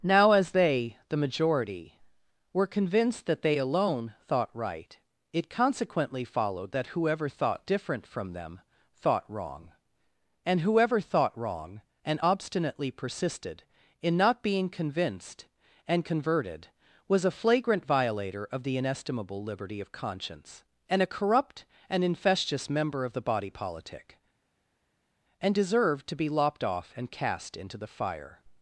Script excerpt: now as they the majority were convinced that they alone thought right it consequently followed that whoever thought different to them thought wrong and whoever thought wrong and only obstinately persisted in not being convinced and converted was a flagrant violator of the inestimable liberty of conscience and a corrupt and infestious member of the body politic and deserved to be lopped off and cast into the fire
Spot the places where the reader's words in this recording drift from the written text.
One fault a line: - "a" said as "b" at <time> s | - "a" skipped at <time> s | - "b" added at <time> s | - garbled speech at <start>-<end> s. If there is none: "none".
- "to" said as "from" at 8.1 s
- "only" skipped at 12.2 s